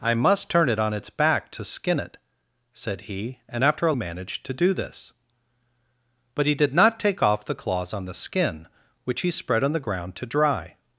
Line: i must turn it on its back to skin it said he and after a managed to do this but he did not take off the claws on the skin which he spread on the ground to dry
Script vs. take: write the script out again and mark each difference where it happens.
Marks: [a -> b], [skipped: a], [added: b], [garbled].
i must turn it on its back to skin it said he and after a managed to do this but he did not take off the claws on the skin which he spread on the ground to dry